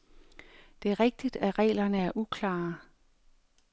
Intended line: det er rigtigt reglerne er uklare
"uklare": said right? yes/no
yes